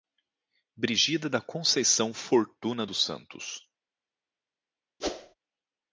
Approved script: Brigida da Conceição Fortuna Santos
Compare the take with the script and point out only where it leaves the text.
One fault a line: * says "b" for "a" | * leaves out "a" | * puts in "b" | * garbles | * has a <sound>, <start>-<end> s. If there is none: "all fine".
* puts in "dos"
* has a whoosh, 5.0-5.3 s